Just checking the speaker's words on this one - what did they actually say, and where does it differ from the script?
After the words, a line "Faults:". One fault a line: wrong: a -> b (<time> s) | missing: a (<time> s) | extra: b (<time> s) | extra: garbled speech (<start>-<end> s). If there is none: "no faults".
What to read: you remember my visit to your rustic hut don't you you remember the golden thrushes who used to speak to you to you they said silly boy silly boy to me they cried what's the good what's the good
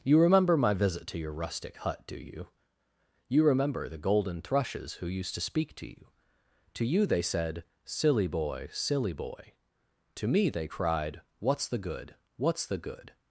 you remember my visit to your rustic hut do you you remember the golden thrushes who used to speak to you to you they said silly boy silly boy to me they cried what's the good what's the good
Faults:
wrong: don't -> do (2.1 s)